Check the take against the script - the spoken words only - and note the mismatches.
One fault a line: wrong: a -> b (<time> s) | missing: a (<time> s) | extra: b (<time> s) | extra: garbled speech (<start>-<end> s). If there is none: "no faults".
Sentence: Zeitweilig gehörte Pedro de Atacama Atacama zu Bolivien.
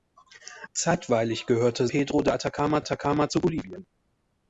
no faults